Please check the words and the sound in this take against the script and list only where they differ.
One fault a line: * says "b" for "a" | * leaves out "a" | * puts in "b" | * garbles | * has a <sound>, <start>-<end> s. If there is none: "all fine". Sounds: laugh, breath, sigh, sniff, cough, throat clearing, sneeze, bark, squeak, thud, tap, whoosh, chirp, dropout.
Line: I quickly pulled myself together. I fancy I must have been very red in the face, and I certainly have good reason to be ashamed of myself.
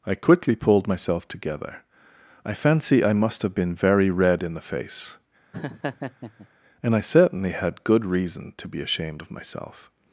* has a laugh, 5.5-6.5 s
* says "had" for "have"